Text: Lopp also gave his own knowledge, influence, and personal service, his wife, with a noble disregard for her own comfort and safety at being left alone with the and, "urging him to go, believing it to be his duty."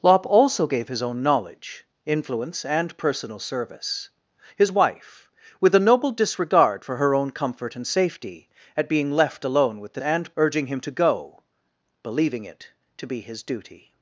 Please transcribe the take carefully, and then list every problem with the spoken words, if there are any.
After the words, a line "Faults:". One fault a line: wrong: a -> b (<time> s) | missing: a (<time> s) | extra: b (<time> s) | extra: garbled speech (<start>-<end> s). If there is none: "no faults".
Lopp also gave his own knowledge, influence, and personal service, his wife, with a noble disregard for her own comfort and safety at being left alone with the and, "urging him to go, believing it to be his duty."
Faults:
no faults